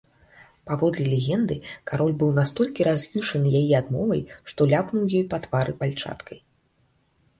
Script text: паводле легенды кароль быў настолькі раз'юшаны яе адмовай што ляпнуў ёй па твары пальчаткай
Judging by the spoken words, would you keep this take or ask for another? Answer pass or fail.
pass